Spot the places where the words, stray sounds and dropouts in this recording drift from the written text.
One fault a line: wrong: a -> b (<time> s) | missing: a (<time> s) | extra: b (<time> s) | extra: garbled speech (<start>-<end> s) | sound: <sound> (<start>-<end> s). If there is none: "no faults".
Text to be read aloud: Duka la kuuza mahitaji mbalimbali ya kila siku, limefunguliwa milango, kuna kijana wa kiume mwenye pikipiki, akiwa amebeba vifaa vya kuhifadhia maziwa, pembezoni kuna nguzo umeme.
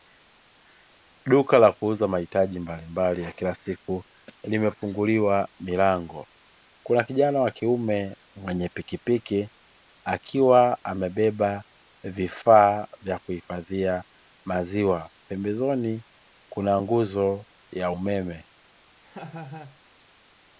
extra: ya (17.7 s)
sound: laugh (19.0-19.8 s)